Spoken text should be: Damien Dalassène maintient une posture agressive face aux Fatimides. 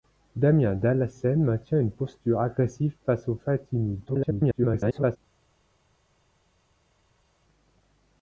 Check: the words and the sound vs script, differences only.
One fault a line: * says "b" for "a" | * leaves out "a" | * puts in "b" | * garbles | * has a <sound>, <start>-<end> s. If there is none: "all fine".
* garbles